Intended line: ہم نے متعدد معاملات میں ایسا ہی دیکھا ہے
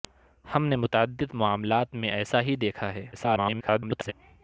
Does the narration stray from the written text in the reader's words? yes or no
yes